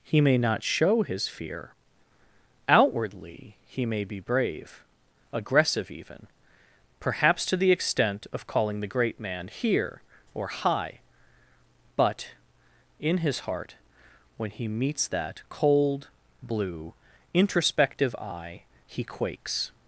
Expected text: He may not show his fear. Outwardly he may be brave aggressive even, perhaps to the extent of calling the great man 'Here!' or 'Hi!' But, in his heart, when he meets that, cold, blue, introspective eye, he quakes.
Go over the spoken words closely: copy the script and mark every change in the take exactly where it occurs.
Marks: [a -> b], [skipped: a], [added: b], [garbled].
He may not show his fear. Outwardly he may be brave aggressive even, perhaps to the extent of calling the great man 'Here!' or 'Hi!' But, in his heart, when he meets that, cold, blue, introspective eye, he quakes.